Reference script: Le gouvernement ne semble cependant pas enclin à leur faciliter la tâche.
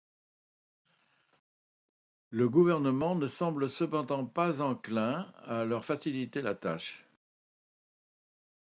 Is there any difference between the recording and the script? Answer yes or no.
no